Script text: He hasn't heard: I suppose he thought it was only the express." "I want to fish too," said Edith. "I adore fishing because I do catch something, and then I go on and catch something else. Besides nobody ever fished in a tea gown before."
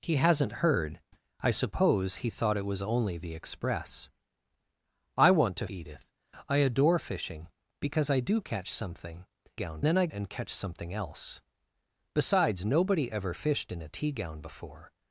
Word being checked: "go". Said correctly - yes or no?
no